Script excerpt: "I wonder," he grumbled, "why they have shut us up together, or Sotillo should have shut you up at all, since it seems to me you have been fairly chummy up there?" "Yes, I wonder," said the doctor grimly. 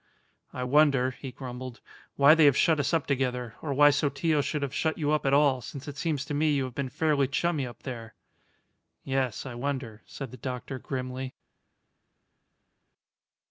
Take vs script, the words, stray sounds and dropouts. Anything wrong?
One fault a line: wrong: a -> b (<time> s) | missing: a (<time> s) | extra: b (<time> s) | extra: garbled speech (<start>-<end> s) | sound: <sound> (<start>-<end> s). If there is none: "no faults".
extra: why (3.7 s)